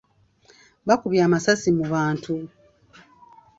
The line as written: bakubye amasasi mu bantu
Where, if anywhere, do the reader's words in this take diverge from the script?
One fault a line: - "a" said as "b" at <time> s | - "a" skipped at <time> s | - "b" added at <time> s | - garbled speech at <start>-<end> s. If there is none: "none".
none